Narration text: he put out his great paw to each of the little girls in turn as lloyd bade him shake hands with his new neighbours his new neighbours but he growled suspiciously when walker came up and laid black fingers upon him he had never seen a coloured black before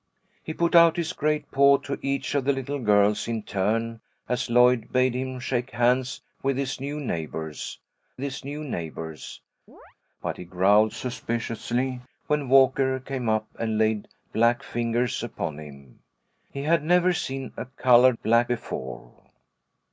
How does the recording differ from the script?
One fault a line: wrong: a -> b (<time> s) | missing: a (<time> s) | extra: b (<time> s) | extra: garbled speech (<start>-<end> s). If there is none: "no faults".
no faults